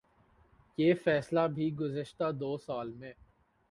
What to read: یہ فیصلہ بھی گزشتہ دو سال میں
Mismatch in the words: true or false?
false